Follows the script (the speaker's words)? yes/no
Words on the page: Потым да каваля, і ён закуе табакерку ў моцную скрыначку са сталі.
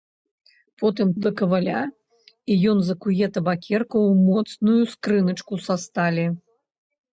yes